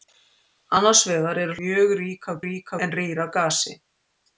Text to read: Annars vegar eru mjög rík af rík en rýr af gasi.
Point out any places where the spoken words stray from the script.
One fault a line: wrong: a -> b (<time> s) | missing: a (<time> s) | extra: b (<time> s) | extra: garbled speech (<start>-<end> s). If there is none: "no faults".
no faults